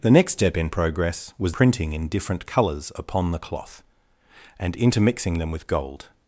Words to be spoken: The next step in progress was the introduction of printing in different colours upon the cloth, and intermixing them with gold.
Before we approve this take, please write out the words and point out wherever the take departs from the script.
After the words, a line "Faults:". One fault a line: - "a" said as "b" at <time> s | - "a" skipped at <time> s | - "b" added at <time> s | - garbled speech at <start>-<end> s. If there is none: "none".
The next step in progress was printing in different colours upon the cloth, and intermixing them with gold.
Faults:
- "the introduction of" skipped at 1.5 s